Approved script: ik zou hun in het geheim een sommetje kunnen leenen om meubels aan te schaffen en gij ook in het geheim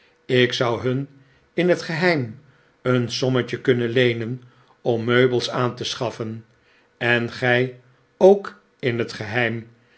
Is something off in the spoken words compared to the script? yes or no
no